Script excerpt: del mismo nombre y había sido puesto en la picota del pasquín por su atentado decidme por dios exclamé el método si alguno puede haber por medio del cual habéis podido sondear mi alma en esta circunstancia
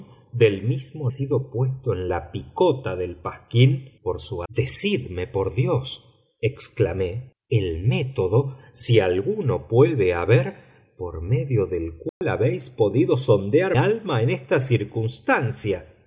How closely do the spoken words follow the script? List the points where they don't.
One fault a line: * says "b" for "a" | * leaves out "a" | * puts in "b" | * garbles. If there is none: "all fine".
* leaves out "nombre y había"
* leaves out "atentado"
* leaves out "mi"